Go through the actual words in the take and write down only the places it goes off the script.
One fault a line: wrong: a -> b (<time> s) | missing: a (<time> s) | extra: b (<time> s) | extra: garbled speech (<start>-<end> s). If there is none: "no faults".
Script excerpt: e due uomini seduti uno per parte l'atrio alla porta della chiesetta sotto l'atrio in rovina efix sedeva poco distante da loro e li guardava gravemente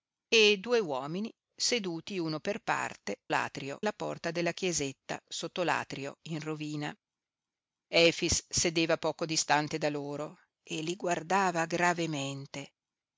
no faults